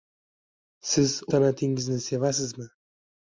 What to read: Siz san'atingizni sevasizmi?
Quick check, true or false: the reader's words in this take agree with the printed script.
true